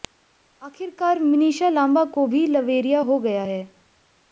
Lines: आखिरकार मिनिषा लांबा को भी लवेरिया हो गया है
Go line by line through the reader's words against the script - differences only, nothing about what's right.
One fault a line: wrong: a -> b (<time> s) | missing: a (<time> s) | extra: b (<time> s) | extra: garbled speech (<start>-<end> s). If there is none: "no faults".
no faults